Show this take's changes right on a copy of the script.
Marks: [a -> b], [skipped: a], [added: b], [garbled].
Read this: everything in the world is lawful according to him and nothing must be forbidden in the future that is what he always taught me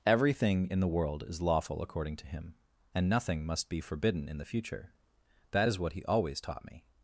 everything in the world is lawful according to him and nothing must be forbidden in the future that is what he always taught me